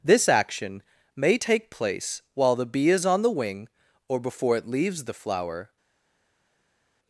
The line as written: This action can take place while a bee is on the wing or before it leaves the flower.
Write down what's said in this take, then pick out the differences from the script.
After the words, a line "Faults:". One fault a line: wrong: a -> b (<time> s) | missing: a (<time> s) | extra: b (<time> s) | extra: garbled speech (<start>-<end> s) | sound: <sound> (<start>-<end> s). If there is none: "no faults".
This action may take place while the bee is on the wing or before it leaves the flower.
Faults:
wrong: can -> may (1.1 s)
wrong: a -> the (2.5 s)